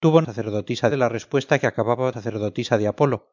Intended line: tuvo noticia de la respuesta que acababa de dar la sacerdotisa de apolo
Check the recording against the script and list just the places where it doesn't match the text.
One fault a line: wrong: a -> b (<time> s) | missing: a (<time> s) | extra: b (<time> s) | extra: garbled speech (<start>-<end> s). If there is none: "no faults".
wrong: noticia -> sacerdotisa (0.2 s)
missing: de dar la (2.1 s)